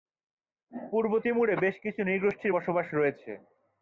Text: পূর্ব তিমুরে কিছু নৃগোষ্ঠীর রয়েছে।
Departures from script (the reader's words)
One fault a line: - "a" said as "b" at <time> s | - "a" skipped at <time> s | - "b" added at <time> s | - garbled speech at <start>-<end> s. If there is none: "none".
- "বেশ" added at 1.5 s
- "বসবাস" added at 2.5 s